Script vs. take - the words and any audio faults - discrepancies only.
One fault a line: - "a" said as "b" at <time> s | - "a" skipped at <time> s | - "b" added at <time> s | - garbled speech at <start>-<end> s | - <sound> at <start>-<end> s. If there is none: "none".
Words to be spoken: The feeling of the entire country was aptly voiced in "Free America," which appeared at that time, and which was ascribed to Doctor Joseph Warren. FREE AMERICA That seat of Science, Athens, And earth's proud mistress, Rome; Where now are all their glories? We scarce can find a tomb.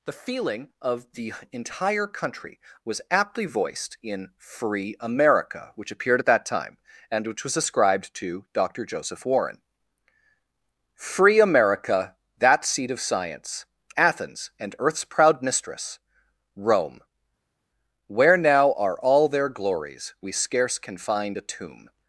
none